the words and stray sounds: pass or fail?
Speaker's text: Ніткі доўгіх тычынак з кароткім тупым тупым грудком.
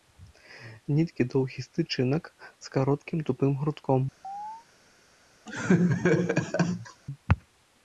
fail